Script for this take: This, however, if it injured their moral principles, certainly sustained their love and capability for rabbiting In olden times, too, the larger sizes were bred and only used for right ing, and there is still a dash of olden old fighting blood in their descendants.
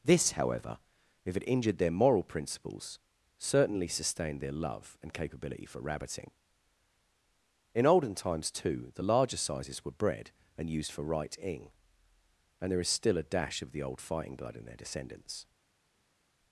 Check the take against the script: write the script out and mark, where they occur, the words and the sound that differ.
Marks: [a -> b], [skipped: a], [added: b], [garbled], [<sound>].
This, however, if it injured their moral principles, certainly sustained their love and capability for rabbiting In olden times, too, the larger sizes were bred and [skipped: only] used for right ing, and there is still a dash of [olden -> the] old fighting blood in their descendants.